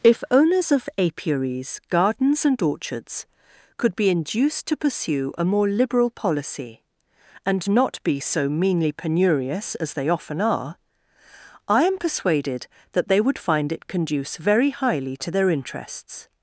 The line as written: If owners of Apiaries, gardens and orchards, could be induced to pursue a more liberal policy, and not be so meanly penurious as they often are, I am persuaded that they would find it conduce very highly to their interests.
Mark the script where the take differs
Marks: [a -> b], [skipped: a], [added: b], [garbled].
If owners of Apiaries, gardens and orchards, could be induced to pursue a more liberal policy, and not be so meanly penurious as they often are, I am persuaded that they would find it conduce very highly to their interests.